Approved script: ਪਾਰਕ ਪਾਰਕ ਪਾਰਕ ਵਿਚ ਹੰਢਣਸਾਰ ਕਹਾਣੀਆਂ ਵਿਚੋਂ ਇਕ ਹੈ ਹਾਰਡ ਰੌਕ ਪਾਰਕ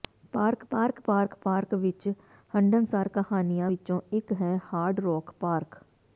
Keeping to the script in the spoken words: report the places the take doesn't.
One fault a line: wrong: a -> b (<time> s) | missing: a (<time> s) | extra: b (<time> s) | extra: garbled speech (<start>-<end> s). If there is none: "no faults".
extra: ਪਾਰਕ (1.4 s)